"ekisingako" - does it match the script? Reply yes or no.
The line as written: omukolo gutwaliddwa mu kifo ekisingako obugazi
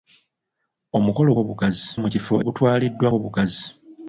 no